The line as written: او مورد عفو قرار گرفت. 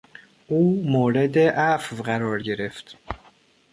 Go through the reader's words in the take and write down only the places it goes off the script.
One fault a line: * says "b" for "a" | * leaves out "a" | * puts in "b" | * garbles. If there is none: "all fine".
all fine